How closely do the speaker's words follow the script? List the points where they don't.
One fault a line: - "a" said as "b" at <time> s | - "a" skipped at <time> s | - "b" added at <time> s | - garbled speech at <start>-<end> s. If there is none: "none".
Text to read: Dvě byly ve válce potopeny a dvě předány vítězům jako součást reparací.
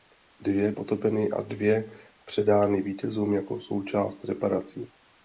- "byly ve válce" skipped at 0.7 s